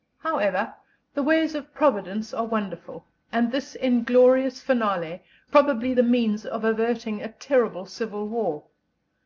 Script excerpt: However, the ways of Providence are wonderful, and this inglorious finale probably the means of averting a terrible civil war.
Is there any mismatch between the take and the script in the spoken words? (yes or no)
no